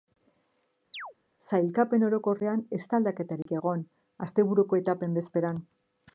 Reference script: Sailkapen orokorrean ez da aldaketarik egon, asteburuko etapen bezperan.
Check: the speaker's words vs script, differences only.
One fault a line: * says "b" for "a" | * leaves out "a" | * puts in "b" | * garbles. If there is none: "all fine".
all fine